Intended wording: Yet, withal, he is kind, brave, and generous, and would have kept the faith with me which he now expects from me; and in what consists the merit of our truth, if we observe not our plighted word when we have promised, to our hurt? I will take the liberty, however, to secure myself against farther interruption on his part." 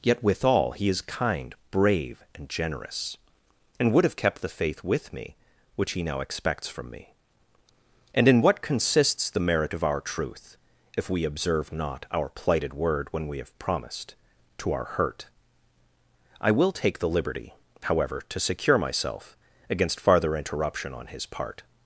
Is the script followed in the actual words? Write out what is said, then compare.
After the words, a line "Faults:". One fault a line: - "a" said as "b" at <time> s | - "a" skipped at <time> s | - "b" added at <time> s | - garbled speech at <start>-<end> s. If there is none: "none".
Yet, withal, he is kind, brave, and generous, and would have kept the faith with me which he now expects from me; and in what consists the merit of our truth, if we observe not our plighted word when we have promised, to our hurt? I will take the liberty, however, to secure myself against farther interruption on his part."
Faults:
none